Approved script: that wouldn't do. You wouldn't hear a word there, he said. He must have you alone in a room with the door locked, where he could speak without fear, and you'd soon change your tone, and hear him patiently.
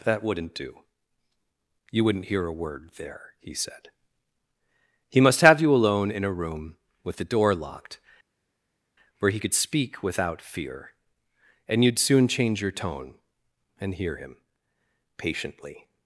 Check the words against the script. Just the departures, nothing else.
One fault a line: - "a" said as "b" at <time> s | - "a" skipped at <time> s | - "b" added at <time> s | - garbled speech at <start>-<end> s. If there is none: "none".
none